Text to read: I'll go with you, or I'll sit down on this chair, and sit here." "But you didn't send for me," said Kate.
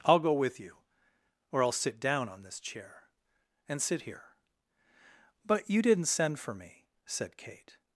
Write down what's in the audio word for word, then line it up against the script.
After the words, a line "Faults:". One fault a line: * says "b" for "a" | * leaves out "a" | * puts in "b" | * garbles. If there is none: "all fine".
I'll go with you, or I'll sit down on this chair, and sit here." "But you didn't send for me," said Kate.
Faults:
all fine